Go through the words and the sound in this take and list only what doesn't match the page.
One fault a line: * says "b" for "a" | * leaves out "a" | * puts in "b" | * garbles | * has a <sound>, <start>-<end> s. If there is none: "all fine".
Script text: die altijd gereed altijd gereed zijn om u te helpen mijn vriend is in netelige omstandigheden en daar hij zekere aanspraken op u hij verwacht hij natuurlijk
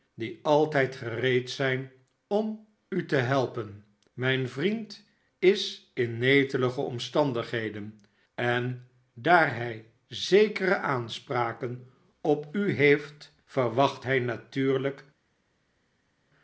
* leaves out "altijd gereed"
* says "heeft" for "hij"